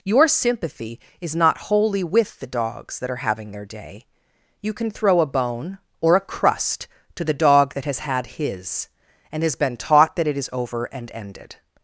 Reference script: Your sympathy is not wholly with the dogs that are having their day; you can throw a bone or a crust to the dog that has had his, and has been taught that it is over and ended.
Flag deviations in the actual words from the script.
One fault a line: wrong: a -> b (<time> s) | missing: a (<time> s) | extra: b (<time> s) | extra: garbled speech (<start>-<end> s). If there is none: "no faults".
no faults